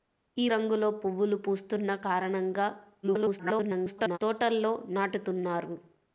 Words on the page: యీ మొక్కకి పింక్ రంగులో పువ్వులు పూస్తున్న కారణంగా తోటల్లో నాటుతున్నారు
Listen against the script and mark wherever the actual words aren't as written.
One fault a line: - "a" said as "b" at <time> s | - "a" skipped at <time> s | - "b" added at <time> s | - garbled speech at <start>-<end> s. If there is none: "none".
- "మొక్కకి పింక్" skipped at 0.5 s
- garbled speech at 3.0-4.2 s